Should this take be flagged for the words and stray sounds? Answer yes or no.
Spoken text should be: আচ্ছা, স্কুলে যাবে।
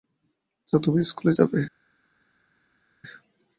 yes